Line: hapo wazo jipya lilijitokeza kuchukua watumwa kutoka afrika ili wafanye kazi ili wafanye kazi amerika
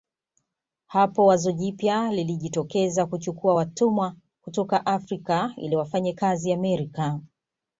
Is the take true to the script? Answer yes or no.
no